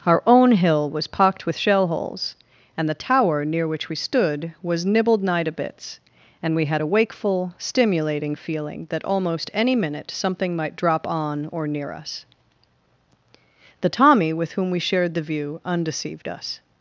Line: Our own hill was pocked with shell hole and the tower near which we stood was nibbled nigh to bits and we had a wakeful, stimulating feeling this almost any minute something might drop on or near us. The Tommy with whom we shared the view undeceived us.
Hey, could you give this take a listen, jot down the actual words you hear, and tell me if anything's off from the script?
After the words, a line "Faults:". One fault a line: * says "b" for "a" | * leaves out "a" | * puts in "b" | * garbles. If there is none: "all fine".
Our own hill was pocked with shell holes and the tower near which we stood was nibbled nigh to bits and we had a wakeful, stimulating feeling that almost any minute something might drop on or near us. The Tommy with whom we shared the view undeceived us.
Faults:
* says "holes" for "hole"
* says "that" for "this"